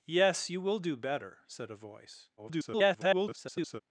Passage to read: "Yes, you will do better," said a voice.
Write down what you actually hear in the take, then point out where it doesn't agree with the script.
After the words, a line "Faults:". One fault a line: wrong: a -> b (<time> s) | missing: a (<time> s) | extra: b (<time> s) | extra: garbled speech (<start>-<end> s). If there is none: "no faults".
"Yes, you will do better," said a voice. [garbled]
Faults:
extra: garbled speech (2.4-3.8 s)